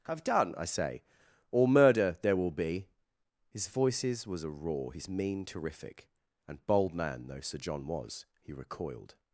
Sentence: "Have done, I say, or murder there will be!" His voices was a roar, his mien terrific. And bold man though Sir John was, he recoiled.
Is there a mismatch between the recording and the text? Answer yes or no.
no